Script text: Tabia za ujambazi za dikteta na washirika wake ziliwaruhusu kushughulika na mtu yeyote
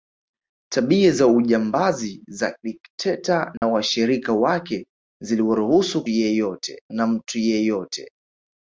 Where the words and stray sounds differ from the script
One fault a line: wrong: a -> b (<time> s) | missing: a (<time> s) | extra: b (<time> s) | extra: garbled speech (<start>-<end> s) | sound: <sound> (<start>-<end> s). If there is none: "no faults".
sound: dropout (3.6-3.6 s)
wrong: kushughulika -> yeyote (6.1 s)